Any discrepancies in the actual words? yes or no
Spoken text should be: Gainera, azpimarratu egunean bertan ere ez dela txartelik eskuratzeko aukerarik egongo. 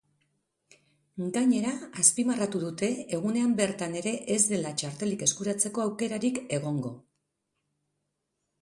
yes